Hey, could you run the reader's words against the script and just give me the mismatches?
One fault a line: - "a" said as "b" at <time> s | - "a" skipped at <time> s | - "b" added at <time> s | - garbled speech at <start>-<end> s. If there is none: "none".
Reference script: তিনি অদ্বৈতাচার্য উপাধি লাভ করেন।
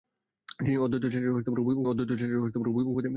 - "অদ্বৈতাচার্য উপাধি লাভ" added at 1.8 s